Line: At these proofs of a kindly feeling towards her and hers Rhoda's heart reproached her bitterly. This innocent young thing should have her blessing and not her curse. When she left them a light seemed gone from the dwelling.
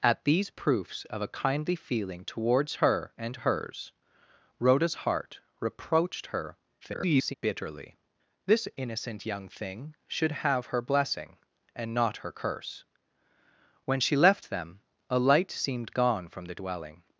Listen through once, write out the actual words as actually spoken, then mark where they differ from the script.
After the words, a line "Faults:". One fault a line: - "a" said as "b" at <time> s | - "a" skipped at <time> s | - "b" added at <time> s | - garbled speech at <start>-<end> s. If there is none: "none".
At these proofs of a kindly feeling towards her and hers Rhoda's heart reproached her [garbled] bitterly. This innocent young thing should have her blessing and not her curse. When she left them a light seemed gone from the dwelling.
Faults:
- garbled speech at 6.8-7.3 s